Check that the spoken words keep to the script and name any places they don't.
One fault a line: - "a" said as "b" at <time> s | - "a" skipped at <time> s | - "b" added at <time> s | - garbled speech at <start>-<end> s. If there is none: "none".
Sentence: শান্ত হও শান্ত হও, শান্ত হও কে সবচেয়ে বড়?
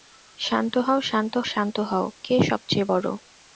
- "হও" skipped at 1.3 s